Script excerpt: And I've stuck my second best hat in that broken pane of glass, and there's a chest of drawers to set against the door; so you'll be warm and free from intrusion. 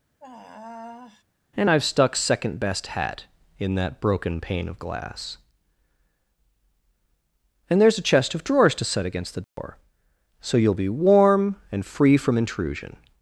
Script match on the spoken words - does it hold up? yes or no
no